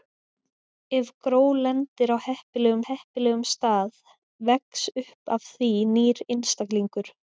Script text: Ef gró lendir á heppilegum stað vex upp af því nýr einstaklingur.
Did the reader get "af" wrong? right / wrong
right